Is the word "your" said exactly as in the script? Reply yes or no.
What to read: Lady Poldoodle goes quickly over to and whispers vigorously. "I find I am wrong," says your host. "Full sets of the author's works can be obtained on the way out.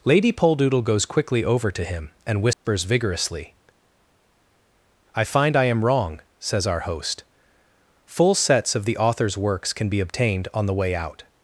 no